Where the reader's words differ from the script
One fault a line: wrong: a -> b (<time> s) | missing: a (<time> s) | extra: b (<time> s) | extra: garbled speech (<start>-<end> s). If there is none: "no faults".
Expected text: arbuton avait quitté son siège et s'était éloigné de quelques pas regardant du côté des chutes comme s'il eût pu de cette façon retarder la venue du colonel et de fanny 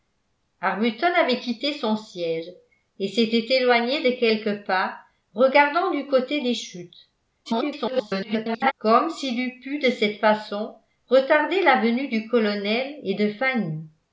extra: garbled speech (7.4-8.7 s)